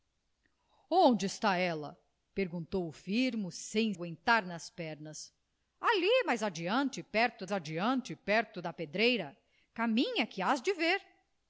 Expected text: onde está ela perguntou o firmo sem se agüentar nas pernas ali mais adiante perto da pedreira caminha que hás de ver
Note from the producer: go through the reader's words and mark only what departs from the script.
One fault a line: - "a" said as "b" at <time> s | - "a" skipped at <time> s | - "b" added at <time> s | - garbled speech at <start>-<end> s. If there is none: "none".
- "se" skipped at 3.9 s
- "adiante perto" added at 7.5 s